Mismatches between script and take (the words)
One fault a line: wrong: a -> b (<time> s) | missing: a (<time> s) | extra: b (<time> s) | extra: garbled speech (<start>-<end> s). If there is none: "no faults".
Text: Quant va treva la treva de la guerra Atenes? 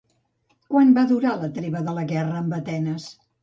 wrong: treva -> durar (1.1 s)
extra: amb (2.5 s)